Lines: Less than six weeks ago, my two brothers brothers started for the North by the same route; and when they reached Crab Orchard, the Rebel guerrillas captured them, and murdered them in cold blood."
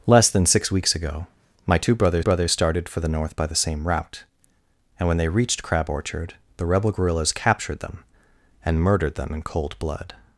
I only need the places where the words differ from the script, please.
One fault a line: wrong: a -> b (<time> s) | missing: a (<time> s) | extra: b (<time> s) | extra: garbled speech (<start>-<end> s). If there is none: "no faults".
no faults